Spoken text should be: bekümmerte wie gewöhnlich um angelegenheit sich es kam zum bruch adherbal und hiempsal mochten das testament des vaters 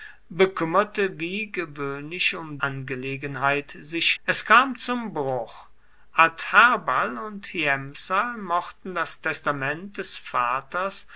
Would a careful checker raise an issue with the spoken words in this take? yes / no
no